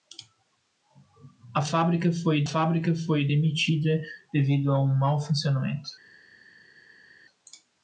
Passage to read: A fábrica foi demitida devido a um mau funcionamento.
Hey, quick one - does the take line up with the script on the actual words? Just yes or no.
no